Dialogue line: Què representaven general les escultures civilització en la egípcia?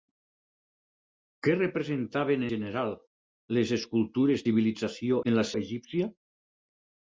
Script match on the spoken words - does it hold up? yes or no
yes